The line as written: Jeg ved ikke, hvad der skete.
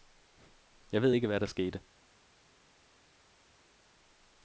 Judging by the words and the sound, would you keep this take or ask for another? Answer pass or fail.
pass